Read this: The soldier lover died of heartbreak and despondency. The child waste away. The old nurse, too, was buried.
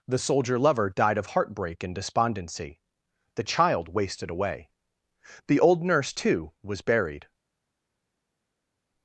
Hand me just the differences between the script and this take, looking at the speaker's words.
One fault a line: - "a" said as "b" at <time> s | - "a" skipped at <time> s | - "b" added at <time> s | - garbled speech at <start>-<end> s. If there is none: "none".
- "waste" said as "wasted" at 3.9 s